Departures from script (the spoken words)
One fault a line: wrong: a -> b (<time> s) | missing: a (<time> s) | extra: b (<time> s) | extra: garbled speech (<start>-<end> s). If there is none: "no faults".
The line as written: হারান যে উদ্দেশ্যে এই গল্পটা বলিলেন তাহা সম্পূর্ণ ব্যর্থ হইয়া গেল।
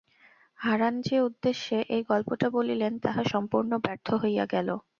no faults